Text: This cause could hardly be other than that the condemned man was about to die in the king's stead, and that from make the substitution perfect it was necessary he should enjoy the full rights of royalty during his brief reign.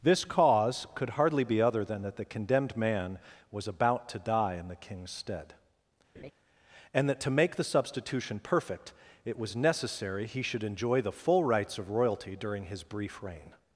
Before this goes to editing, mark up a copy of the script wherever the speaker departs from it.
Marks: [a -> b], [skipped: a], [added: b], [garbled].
This cause could hardly be other than that the condemned man was about to die in the king's stead, and that [from -> to] make the substitution perfect it was necessary he should enjoy the full rights of royalty during his brief reign.